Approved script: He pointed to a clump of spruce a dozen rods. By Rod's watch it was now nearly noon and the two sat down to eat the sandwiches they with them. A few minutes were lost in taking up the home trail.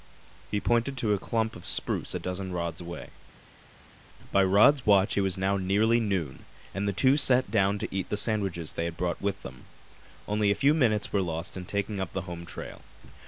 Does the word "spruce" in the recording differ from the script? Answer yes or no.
no